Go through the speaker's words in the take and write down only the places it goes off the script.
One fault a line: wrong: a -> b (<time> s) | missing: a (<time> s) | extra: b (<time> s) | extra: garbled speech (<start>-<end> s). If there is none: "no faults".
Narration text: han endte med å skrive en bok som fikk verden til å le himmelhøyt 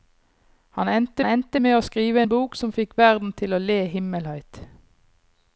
extra: endte (1.2 s)